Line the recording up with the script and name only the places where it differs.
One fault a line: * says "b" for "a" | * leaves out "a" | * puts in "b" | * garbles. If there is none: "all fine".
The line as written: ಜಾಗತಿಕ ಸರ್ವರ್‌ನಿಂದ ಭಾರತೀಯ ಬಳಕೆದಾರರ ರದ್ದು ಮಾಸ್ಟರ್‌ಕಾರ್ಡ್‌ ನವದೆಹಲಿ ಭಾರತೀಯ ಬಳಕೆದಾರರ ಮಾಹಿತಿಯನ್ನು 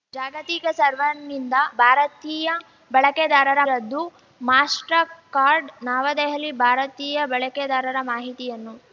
all fine